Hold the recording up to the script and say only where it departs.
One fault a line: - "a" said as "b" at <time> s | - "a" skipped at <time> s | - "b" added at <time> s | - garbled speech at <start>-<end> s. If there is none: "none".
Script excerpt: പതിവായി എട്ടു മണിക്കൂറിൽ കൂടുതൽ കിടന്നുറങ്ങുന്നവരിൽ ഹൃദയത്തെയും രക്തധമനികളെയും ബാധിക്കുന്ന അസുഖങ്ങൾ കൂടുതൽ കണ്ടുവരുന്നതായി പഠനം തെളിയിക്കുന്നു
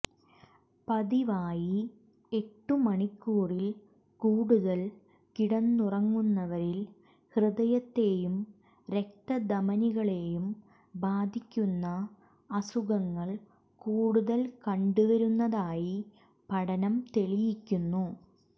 none